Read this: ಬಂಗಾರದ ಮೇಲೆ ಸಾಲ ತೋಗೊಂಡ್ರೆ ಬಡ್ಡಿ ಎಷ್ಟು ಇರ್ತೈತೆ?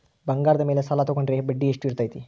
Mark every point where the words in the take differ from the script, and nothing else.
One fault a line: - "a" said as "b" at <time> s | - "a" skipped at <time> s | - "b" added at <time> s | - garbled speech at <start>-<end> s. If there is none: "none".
none